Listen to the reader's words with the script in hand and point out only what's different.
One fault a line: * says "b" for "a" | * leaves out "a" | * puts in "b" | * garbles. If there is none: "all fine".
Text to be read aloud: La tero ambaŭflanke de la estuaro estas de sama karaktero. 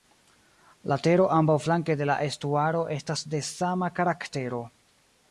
all fine